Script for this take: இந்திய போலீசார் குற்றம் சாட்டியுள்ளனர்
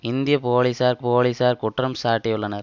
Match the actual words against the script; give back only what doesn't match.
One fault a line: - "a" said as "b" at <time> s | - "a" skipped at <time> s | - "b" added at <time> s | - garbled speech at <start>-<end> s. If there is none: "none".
- "போலீசார்" added at 1.0 s